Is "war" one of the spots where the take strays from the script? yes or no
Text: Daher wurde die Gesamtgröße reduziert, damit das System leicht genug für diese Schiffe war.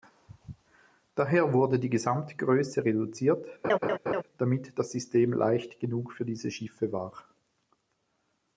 no